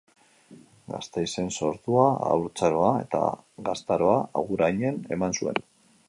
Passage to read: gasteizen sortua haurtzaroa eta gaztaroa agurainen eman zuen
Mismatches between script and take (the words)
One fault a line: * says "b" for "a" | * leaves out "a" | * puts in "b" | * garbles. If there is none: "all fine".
all fine